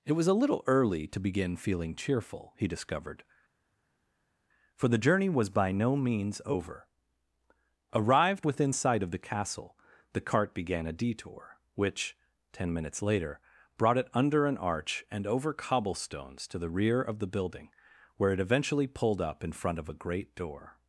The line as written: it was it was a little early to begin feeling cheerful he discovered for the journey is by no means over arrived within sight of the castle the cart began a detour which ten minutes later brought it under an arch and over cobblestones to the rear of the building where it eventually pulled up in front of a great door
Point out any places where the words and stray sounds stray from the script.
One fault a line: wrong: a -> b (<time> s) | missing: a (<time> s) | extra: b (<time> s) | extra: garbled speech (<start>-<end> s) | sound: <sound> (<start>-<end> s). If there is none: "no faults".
missing: it was (0.3 s)
wrong: is -> was (5.3 s)